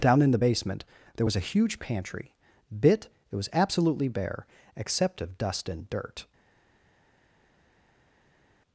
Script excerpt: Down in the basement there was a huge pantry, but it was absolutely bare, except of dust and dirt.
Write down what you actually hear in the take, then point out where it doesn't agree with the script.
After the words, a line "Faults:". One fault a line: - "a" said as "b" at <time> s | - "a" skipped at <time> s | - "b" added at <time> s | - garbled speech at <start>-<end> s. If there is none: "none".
Down in the basement there was a huge pantry, bit it was absolutely bare, except of dust and dirt.
Faults:
- "but" said as "bit" at 2.8 s